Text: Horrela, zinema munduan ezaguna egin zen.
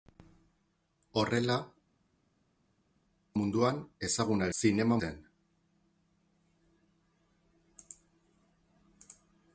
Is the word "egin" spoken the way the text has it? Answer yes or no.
no